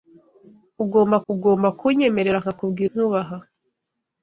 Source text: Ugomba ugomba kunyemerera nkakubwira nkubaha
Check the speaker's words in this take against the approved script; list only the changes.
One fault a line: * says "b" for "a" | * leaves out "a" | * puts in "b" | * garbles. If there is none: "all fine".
all fine